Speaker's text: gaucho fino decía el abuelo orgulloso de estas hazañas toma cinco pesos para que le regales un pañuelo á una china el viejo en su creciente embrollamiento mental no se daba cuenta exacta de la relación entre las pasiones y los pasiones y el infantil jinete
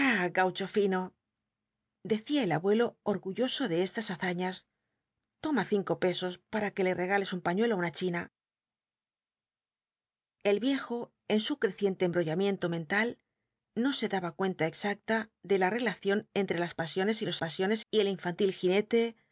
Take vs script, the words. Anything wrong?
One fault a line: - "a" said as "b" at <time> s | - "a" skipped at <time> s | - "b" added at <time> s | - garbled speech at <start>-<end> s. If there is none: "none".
none